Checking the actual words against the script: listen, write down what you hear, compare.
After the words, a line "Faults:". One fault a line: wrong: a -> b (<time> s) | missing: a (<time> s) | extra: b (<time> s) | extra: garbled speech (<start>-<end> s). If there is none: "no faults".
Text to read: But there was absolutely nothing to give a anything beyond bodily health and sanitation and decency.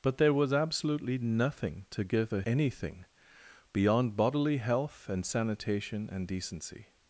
But there was absolutely nothing to give a anything beyond bodily health and sanitation and decency.
Faults:
no faults